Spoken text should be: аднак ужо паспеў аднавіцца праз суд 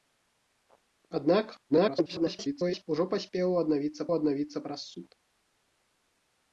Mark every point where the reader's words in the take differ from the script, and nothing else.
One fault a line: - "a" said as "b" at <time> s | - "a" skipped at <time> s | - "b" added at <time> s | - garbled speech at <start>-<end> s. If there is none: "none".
- garbled speech at 1.7-2.9 s
- "аднавіцца" added at 4.2 s